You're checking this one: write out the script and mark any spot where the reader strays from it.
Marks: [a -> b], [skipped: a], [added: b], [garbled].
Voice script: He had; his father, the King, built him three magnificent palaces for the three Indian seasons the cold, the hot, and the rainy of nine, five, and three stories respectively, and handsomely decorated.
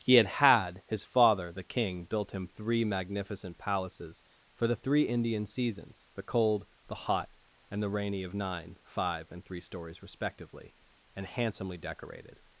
He had; [added: had] his father, the King, built him three magnificent palaces for the three Indian seasons the cold, the hot, and the rainy of nine, five, and three stories respectively, and handsomely decorated.